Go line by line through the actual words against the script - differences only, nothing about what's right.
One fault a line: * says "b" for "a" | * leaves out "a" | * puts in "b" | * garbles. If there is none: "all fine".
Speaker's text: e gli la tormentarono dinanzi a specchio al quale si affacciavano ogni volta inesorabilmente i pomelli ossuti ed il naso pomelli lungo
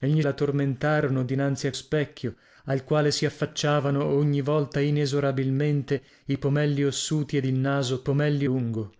all fine